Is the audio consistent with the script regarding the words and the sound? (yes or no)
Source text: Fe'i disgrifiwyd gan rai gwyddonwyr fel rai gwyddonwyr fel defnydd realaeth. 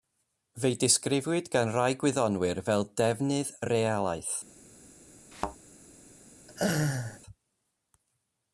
no